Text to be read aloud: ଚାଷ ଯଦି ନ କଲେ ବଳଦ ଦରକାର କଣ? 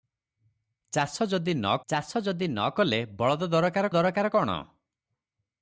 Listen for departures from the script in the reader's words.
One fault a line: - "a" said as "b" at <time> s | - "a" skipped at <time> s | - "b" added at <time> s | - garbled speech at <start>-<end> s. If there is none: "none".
- "ଚାଷ ଯଦି ନ" added at 1.9 s
- "ଦରକାର" added at 3.9 s